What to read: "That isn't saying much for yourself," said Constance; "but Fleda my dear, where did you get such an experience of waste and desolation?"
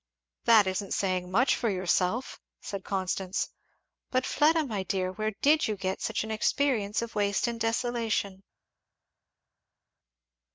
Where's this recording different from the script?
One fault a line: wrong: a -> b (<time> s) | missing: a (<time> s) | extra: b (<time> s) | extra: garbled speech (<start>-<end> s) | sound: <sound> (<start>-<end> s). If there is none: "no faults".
no faults